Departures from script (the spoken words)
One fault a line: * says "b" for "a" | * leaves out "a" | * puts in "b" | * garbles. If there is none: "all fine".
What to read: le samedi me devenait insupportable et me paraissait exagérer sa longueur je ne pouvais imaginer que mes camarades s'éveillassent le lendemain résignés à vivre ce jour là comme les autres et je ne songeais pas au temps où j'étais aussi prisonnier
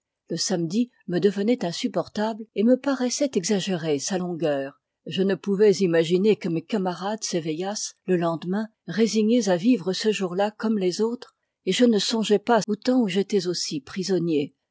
all fine